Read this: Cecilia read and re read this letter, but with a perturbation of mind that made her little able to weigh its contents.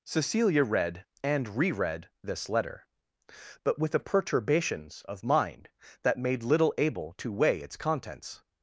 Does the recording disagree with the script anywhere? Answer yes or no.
yes